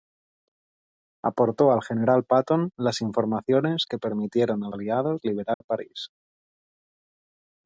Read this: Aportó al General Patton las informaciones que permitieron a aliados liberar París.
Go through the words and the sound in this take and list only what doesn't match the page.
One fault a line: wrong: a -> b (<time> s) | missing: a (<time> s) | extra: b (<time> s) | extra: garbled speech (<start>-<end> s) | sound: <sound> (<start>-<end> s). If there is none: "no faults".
sound: dropout (5.5-5.6 s)